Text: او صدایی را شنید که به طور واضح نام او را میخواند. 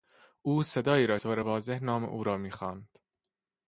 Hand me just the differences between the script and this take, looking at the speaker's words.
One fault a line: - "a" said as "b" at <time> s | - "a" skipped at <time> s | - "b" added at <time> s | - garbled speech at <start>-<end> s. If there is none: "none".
- "شنید که به" skipped at 1.2 s